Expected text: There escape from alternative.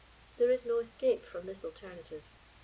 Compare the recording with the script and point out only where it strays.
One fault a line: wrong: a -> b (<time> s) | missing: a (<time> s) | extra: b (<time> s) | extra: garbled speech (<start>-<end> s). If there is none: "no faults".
extra: is no (0.5 s)
extra: this (1.4 s)